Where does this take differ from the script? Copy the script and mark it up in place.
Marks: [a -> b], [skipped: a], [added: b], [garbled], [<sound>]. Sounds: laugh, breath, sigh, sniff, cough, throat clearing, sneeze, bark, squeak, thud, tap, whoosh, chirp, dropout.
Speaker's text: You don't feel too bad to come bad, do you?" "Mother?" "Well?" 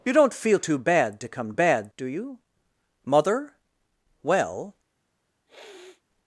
You don't feel too bad to come bad, do you?" "Mother?" "Well?" [sniff]